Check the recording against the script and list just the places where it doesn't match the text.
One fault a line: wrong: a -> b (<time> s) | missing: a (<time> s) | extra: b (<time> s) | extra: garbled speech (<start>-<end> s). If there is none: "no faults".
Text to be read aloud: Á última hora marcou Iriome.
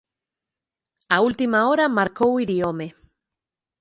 no faults